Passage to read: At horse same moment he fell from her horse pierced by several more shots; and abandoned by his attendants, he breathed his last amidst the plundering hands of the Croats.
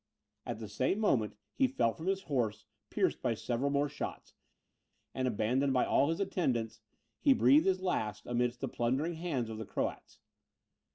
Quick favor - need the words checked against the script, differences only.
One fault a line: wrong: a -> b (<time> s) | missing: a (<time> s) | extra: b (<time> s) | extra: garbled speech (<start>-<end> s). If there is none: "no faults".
wrong: horse -> the (0.6 s)
wrong: her -> his (2.1 s)
extra: all (5.8 s)